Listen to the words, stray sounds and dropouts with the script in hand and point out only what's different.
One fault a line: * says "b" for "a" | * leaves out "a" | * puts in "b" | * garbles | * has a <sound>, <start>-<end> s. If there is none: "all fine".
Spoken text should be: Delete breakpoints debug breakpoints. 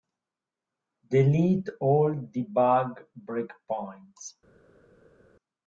* says "all" for "breakpoints"